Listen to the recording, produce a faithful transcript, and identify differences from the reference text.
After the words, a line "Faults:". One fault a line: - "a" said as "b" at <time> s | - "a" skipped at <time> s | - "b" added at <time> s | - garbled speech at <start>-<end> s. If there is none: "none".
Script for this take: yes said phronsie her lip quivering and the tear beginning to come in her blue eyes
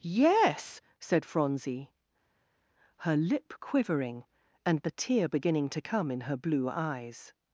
yes said phronsie her lip quivering and the tear beginning to come in her blue eyes
Faults:
none